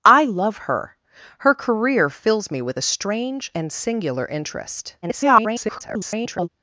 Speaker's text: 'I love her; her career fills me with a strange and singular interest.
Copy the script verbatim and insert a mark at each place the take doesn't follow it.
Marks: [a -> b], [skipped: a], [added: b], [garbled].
'I love her; her career fills me with a strange and singular interest. [garbled]